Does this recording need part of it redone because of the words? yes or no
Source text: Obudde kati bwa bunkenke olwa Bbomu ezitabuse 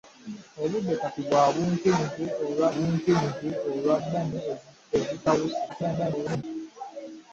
yes